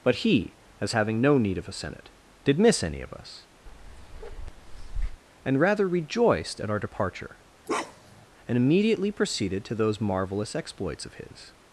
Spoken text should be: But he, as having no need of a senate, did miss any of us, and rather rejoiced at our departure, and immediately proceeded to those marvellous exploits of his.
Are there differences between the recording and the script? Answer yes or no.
no